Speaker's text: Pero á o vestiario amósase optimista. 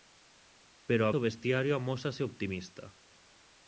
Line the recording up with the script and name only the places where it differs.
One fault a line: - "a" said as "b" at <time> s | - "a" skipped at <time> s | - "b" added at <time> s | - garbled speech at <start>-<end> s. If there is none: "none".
none